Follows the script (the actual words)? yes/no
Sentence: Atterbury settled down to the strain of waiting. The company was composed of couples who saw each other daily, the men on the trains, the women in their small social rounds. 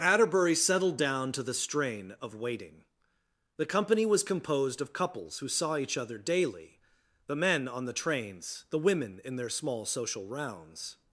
yes